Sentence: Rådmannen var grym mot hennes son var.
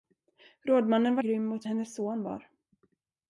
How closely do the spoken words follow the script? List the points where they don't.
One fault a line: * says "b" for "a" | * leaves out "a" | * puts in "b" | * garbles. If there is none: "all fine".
all fine